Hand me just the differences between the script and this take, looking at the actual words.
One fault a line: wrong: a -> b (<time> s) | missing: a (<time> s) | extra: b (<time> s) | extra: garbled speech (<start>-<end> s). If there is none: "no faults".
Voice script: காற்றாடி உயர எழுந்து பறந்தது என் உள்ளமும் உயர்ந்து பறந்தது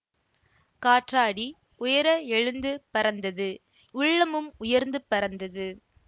missing: என் (3.5 s)